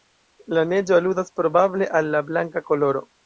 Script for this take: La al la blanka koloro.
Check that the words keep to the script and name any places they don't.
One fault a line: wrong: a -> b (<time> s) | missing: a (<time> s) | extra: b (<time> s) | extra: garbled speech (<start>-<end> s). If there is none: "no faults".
extra: neĝo aludas probable (0.7 s)